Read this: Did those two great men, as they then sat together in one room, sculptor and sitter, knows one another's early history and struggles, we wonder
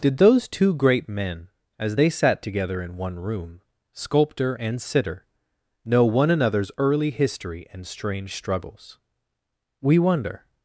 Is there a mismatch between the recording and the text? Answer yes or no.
yes